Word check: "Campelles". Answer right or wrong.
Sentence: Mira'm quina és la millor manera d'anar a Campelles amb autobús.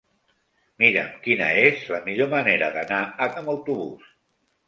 wrong